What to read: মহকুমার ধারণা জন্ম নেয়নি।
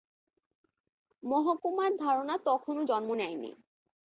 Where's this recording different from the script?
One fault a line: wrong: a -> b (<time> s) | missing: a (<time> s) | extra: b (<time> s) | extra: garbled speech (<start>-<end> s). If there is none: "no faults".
extra: তখনও (2.5 s)